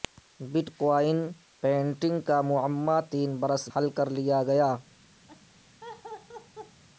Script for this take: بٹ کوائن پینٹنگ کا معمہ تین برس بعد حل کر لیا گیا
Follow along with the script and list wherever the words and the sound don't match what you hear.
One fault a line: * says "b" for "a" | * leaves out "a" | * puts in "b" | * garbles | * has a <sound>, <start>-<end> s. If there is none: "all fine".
* leaves out "بعد"
* has a laugh, 5.3-6.8 s